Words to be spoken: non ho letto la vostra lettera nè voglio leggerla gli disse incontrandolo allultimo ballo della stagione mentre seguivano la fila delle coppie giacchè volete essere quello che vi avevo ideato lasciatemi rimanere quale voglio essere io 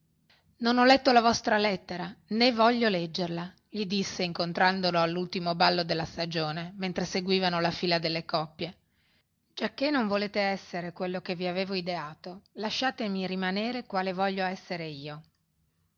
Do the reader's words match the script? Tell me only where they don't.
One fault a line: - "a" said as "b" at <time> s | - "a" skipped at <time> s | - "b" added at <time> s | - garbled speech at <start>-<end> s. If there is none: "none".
- "non" added at 9.9 s